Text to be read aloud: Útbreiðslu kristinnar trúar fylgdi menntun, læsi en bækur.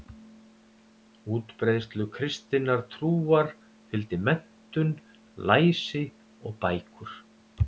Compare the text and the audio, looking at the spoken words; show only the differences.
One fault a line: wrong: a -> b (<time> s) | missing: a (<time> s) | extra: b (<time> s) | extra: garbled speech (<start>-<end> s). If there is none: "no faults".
wrong: en -> og (6.4 s)